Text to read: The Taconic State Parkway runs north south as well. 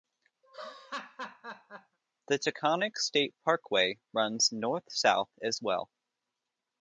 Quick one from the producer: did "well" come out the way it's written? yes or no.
yes